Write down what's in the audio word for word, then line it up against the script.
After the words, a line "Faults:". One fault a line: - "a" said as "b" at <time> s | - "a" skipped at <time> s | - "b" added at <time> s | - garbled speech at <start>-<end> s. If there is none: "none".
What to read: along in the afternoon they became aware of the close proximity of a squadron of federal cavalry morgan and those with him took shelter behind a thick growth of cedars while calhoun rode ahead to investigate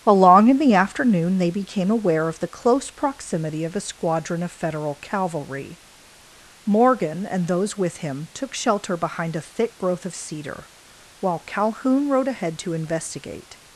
along in the afternoon they became aware of the close proximity of a squadron of federal cavalry morgan and those with him took shelter behind a thick growth of cedar while calhoun rode ahead to investigate
Faults:
- "cedars" said as "cedar" at 10.2 s